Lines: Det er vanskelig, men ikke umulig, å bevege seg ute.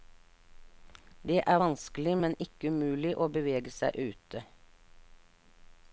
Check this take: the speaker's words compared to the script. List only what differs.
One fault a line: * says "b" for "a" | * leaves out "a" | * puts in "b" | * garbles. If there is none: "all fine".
all fine